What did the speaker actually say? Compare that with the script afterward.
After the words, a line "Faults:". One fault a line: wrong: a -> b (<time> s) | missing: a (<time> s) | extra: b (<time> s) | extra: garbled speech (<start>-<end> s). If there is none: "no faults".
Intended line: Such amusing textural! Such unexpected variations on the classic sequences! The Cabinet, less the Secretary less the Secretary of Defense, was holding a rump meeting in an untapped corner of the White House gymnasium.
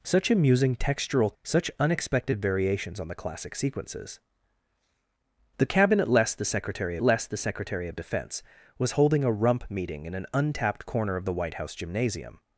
Such amusing textural! Such unexpected variations on the classic sequences! The Cabinet, less the Secretary less the Secretary of Defense, was holding a rump meeting in an untapped corner of the White House gymnasium.
Faults:
no faults